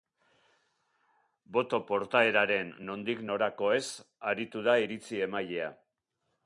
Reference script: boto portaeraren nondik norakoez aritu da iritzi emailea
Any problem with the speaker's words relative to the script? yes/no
no